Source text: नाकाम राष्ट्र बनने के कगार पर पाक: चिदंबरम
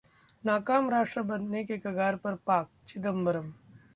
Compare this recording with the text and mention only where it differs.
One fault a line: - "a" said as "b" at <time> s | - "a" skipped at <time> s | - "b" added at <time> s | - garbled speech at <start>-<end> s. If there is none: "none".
none